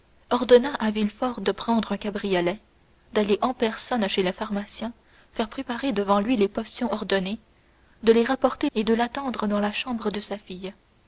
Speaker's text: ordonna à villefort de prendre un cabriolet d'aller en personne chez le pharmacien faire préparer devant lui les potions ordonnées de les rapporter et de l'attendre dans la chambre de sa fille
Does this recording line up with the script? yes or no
yes